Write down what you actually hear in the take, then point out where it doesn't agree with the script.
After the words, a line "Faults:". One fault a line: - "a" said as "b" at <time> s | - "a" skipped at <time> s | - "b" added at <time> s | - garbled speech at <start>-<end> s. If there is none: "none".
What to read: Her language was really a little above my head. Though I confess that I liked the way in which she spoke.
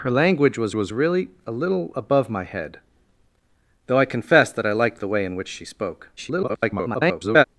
Her language was was really a little above my head. Though I confess that I liked the way in which she spoke. [garbled]
Faults:
- "was" added at 0.7 s
- garbled speech at 6.2-7.4 s